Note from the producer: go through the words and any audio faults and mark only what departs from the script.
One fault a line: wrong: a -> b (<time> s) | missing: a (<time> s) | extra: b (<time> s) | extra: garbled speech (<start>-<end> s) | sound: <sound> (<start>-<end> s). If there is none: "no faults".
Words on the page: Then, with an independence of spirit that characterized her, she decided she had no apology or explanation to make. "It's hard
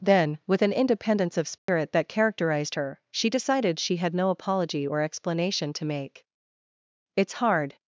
sound: dropout (1.6-1.7 s)